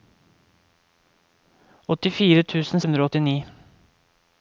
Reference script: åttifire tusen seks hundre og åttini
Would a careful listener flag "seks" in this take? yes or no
yes